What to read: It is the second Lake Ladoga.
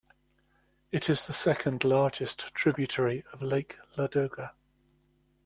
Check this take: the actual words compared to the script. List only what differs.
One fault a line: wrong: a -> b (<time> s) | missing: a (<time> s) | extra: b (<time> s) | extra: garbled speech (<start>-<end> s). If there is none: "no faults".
extra: largest tributary of (1.8 s)